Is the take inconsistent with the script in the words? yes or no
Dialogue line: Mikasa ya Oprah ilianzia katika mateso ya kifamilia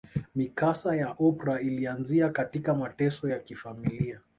no